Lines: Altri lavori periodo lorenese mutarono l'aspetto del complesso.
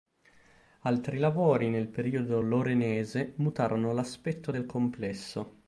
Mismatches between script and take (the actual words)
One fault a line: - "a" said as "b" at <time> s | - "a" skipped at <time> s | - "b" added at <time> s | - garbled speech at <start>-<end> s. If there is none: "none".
- "nel" added at 1.7 s